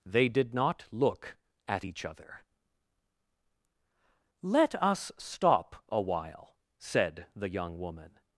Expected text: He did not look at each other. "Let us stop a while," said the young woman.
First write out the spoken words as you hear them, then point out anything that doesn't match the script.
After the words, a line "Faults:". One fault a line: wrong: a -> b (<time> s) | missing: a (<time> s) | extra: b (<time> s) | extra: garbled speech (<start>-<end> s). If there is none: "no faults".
They did not look at each other. "Let us stop a while," said the young woman.
Faults:
wrong: He -> They (0.1 s)